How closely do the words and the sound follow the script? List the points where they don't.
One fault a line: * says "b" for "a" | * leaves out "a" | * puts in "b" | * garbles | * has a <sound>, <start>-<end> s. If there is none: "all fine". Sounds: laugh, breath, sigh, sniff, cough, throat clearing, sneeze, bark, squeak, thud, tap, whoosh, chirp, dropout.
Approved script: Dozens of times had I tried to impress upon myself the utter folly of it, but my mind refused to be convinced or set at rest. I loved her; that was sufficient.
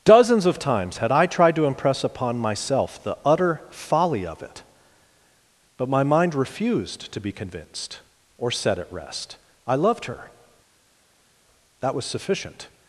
all fine